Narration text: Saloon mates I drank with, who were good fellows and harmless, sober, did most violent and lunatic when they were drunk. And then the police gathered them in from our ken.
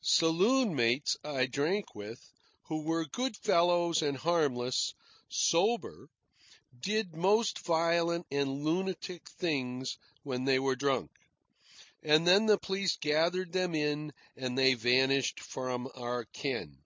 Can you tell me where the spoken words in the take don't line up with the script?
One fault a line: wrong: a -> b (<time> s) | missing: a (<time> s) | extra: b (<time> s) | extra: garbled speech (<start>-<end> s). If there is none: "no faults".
extra: things (9.3 s)
extra: and they vanished (14.4 s)